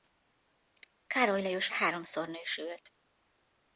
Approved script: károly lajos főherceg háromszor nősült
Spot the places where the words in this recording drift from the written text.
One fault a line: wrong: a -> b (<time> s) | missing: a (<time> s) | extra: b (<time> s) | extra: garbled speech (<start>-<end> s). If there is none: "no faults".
missing: főherceg (1.7 s)